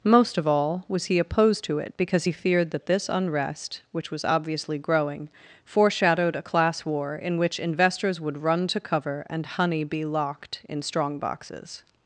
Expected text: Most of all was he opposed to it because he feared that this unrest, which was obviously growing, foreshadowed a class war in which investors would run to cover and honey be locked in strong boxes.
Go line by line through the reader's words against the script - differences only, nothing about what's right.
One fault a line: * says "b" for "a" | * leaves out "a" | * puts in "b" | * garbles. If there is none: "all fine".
all fine